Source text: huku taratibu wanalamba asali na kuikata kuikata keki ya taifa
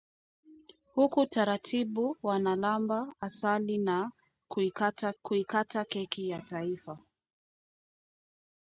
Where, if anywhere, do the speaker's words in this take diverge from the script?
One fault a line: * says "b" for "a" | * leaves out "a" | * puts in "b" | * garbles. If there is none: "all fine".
all fine